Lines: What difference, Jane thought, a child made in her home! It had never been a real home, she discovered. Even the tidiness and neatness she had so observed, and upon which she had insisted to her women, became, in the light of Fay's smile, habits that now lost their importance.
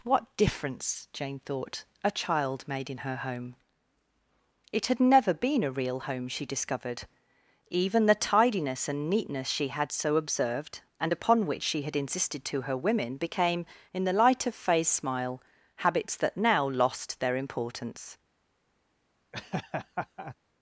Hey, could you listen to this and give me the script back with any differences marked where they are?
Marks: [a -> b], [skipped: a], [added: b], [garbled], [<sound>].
What difference, Jane thought, a child made in her home! It had never been a real home, she discovered. Even the tidiness and neatness she had so observed, and upon which she had insisted to her women, became, in the light of Fay's smile, habits that now lost their importance. [laugh]